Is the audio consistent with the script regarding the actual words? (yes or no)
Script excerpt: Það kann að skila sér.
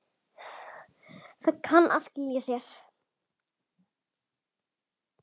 yes